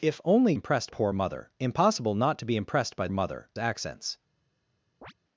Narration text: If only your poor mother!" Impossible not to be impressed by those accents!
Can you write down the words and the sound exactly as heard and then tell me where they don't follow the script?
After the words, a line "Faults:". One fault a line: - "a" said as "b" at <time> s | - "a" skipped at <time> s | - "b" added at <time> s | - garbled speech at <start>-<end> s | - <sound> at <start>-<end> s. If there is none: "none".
If only impressed poor mother!" Impossible not to be impressed by mother accents!
Faults:
- "your" said as "impressed" at 0.5 s
- "those" said as "mother" at 3.1 s
- chirp at 5.0-5.1 s